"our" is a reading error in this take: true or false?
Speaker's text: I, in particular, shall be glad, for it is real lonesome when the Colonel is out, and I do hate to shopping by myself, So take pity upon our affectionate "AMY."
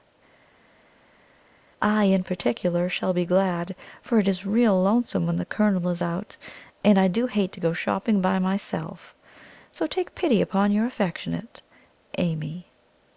true